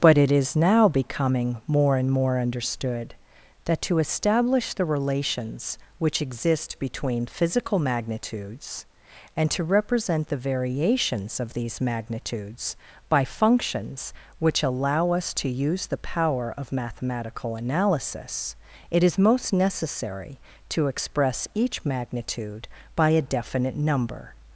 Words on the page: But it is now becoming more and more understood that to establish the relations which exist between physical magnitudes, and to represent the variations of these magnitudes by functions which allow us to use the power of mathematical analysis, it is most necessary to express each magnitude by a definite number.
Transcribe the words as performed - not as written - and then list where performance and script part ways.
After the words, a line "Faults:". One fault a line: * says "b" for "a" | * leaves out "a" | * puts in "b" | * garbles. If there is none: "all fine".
But it is now becoming more and more understood that to establish the relations which exist between physical magnitudes, and to represent the variations of these magnitudes by functions which allow us to use the power of mathematical analysis, it is most necessary to express each magnitude by a definite number.
Faults:
all fine